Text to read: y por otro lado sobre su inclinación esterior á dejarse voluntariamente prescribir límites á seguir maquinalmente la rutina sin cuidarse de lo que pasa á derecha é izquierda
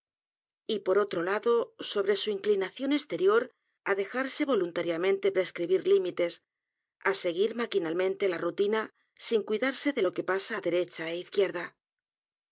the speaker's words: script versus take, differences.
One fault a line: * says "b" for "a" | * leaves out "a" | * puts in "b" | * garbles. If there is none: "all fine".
all fine